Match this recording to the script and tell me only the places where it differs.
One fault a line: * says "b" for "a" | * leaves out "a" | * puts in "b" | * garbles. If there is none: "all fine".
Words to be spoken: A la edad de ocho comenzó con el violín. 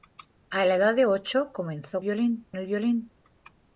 * says "violín" for "con"